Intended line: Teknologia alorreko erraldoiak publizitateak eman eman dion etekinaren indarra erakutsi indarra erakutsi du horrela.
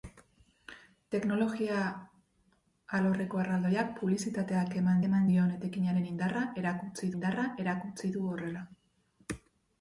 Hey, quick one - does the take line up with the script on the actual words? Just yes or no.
yes